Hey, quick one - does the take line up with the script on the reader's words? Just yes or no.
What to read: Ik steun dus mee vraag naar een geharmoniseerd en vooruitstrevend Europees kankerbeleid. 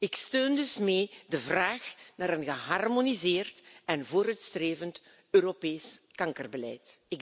no